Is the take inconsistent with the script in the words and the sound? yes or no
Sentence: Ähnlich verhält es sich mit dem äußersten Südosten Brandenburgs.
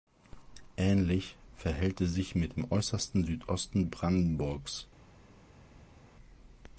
no